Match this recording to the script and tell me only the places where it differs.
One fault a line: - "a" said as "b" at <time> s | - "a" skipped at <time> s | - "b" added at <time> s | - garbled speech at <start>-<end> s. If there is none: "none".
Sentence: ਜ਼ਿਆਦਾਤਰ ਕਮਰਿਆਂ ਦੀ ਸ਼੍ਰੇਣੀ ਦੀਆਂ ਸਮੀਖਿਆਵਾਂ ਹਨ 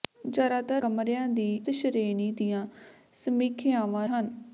none